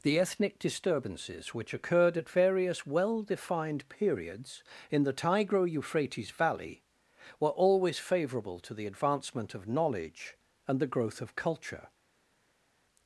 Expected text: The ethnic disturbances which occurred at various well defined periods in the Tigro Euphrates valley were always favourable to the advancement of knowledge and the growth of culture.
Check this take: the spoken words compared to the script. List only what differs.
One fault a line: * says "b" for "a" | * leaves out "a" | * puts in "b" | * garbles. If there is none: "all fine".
all fine